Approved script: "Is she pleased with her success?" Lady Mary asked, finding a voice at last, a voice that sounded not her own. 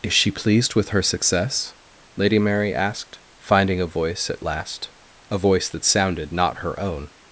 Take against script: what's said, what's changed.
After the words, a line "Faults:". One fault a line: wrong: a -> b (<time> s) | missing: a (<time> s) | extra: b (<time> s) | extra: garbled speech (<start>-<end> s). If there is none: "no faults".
"Is she pleased with her success?" Lady Mary asked, finding a voice at last, a voice that sounded not her own.
Faults:
no faults